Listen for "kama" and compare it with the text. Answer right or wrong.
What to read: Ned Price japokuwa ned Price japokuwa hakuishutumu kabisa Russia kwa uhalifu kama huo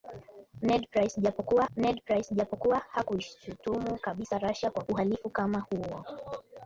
right